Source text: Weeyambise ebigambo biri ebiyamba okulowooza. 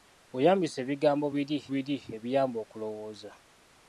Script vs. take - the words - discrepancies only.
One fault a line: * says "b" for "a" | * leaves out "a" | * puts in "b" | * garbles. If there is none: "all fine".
* puts in "biri"